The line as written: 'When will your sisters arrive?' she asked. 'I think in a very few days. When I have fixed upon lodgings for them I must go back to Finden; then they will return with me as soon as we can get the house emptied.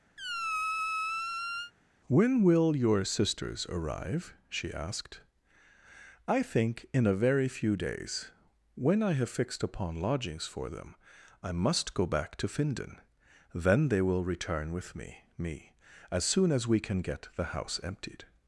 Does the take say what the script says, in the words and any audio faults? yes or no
no